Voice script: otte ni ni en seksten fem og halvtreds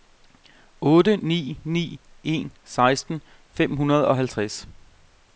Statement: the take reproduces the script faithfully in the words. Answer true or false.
false